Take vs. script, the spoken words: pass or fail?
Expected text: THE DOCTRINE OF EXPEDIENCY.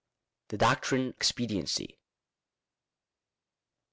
fail